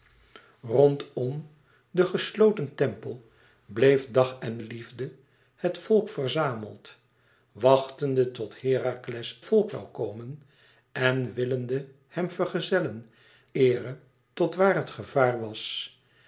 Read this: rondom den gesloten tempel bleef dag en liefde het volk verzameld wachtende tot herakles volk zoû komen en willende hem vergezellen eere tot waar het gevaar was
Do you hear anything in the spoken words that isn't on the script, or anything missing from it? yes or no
no